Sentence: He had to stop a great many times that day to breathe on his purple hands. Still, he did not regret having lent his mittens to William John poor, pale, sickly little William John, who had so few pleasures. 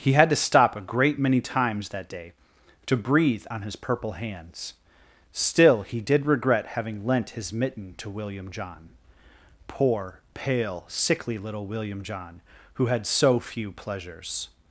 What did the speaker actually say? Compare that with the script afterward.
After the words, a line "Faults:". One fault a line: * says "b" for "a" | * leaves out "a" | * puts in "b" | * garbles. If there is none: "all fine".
He had to stop a great many times that day to breathe on his purple hands. Still, he did regret having lent his mitten to William John poor, pale, sickly little William John, who had so few pleasures.
Faults:
* leaves out "not"
* says "mitten" for "mittens"